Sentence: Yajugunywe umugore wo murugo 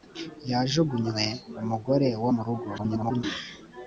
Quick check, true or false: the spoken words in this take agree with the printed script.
false